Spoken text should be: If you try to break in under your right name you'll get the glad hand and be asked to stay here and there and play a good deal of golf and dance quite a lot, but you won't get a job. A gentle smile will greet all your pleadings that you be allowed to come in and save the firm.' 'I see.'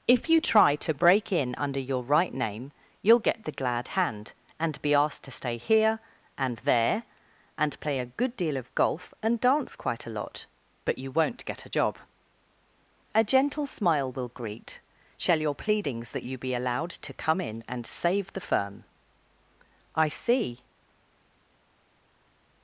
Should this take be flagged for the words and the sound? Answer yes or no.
yes